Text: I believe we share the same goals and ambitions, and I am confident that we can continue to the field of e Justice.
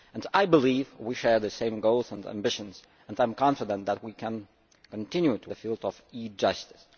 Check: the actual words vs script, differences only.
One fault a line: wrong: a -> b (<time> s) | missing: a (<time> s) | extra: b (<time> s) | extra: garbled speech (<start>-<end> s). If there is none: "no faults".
no faults